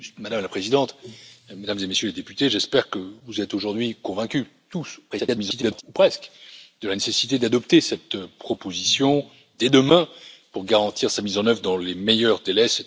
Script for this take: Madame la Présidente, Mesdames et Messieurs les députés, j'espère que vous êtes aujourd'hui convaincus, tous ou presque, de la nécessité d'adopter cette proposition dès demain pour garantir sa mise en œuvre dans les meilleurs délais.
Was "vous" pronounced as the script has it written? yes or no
yes